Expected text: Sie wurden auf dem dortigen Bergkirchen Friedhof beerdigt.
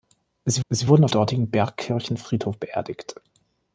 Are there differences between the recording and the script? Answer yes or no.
yes